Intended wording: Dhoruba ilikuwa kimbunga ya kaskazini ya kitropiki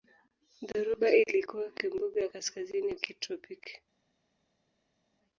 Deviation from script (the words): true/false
false